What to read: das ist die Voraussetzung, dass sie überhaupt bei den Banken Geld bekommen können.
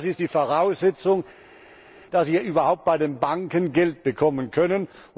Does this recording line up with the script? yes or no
yes